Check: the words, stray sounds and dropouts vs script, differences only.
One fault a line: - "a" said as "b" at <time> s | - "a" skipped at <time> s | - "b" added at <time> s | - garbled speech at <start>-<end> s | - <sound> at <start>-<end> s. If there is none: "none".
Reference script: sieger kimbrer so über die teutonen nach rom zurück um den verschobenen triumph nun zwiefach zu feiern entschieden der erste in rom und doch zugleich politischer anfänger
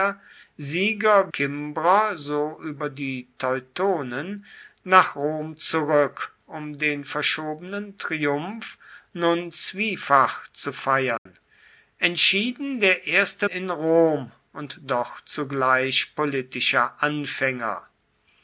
- dropout at 11.2-11.3 s